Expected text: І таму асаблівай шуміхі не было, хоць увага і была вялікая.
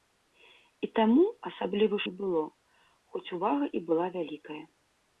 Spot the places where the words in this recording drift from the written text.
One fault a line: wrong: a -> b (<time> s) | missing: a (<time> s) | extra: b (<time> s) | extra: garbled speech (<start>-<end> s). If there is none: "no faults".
missing: шуміхі (2.0 s)